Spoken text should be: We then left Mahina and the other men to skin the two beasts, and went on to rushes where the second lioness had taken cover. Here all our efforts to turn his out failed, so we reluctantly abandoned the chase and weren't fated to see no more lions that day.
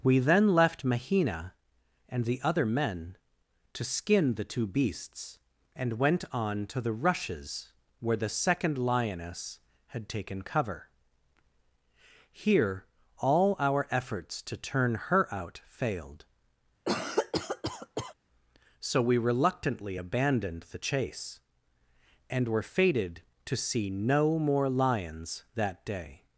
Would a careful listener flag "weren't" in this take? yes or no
yes